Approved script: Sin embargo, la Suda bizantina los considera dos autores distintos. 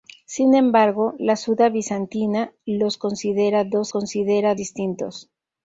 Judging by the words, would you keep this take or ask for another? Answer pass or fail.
fail